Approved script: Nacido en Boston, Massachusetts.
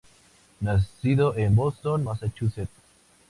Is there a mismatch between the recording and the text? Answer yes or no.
no